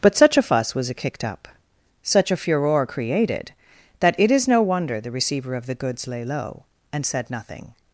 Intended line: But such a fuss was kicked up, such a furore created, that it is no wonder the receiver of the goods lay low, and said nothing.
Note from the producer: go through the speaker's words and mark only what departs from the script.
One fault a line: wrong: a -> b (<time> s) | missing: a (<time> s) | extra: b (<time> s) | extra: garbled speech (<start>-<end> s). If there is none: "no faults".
no faults